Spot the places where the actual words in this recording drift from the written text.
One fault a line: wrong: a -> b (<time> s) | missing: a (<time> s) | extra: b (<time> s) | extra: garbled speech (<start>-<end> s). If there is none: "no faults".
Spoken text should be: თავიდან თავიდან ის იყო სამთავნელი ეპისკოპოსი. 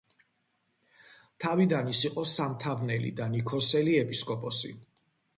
missing: თავიდან (1.9 s)
extra: და ნიქოზელი (3.2 s)